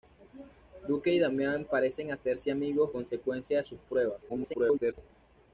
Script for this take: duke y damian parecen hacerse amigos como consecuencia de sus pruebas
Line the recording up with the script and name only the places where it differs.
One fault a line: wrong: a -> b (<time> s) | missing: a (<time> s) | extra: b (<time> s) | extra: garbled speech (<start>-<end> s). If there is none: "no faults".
missing: como (2.9 s)
extra: garbled speech (4.3-4.9 s)